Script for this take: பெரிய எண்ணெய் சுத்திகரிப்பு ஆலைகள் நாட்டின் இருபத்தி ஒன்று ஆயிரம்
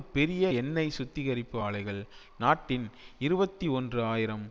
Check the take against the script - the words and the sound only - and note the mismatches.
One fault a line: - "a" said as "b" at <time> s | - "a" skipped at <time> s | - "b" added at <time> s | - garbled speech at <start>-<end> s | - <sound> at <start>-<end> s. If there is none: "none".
none